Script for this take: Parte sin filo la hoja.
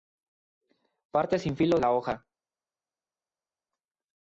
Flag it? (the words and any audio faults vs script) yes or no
no